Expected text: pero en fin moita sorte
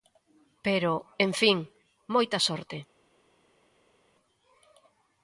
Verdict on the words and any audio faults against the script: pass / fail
pass